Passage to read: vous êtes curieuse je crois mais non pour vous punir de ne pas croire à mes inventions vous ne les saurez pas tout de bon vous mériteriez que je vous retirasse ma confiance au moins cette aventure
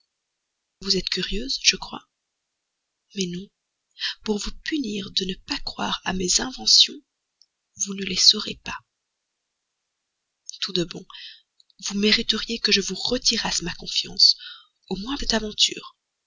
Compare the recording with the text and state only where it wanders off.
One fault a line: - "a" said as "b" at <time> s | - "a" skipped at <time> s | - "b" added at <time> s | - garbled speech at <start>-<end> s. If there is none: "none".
none